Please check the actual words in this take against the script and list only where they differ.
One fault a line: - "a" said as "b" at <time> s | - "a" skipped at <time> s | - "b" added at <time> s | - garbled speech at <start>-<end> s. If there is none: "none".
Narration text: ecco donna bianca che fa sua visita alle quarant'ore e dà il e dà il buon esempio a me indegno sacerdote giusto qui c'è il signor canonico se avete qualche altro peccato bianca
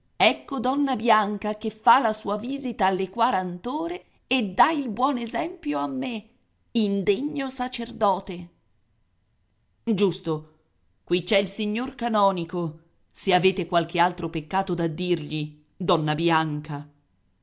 - "la" added at 2.0 s
- "e dà il" skipped at 4.9 s
- "da dirgli donna" added at 14.7 s